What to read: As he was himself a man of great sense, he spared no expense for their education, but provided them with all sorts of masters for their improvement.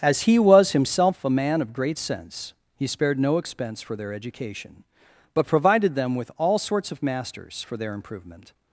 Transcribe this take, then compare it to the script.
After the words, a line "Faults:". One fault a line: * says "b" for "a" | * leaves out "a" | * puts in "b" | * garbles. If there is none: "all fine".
As he was himself a man of great sense, he spared no expense for their education, but provided them with all sorts of masters for their improvement.
Faults:
all fine